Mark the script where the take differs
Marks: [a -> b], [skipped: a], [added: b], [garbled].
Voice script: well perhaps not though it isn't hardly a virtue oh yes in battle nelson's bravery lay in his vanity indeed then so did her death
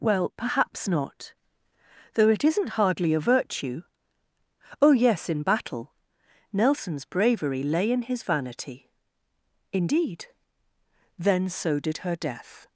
well perhaps not though it isn't hardly a virtue oh yes in battle nelson's bravery lay in his vanity indeed then so did her death